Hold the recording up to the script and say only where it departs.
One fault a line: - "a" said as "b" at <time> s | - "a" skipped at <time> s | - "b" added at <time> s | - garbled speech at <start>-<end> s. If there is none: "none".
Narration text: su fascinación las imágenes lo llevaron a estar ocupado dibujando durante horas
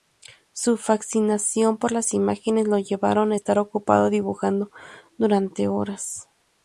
- "por" added at 1.8 s